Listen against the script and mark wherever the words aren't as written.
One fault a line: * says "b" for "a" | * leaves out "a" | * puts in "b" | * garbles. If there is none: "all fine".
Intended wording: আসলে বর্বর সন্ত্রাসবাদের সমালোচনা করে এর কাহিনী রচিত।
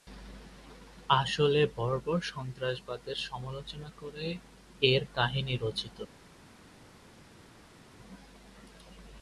all fine